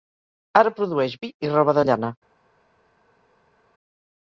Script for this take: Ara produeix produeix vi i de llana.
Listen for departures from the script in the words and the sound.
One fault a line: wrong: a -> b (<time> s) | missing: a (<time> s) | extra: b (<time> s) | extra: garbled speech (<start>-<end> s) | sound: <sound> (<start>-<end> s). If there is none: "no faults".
missing: produeix (1.1 s)
extra: roba (1.5 s)